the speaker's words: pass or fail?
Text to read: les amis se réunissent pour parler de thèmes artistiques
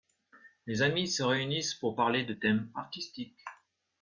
pass